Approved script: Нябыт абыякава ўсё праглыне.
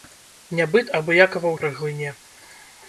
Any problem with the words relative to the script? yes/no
yes